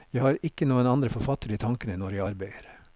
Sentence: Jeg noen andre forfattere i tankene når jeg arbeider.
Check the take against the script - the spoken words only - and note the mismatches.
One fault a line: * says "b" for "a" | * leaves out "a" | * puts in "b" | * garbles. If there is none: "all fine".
* puts in "har ikke"